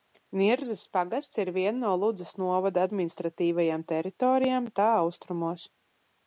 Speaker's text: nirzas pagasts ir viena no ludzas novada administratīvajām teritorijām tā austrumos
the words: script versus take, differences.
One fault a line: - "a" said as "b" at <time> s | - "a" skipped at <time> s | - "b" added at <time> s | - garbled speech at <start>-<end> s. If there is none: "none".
none